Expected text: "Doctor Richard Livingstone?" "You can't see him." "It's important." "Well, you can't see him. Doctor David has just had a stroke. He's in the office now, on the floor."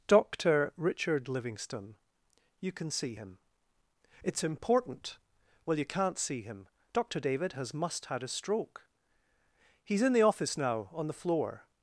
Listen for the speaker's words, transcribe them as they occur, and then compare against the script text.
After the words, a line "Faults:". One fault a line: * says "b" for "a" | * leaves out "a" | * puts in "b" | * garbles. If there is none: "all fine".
"Doctor Richard Livingstone?" "You can see him." "It's important." "Well, you can't see him. Doctor David has must had a stroke. He's in the office now, on the floor."
Faults:
* says "can" for "can't"
* says "must" for "just"